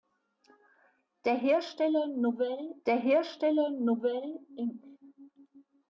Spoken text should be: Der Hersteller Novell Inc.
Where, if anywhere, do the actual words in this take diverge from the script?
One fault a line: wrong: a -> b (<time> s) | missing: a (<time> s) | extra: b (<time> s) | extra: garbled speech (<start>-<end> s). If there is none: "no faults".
extra: der Hersteller Novell (2.9 s)